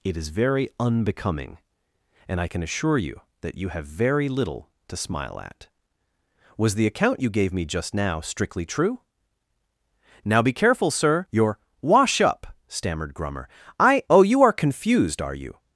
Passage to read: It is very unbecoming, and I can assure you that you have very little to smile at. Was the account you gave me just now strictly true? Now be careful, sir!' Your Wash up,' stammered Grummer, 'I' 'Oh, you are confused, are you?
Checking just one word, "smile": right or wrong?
right